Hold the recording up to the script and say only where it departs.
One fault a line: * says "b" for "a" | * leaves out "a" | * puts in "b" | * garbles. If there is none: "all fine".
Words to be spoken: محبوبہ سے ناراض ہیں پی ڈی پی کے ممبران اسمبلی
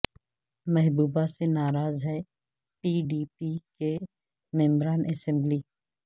all fine